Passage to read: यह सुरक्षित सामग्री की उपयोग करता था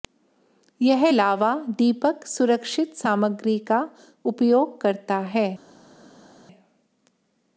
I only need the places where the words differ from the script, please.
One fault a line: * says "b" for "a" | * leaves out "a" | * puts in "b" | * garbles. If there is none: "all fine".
* puts in "लावा दीपक"
* says "का" for "की"
* says "है" for "था"